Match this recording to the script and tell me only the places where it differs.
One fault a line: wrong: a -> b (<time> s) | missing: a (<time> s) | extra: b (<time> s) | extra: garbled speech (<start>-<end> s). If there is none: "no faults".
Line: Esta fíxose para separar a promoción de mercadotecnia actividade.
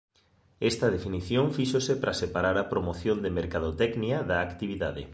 extra: definición (0.9 s)
extra: da (4.2 s)